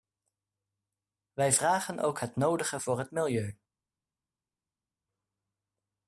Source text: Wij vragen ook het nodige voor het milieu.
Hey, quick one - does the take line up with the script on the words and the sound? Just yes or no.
yes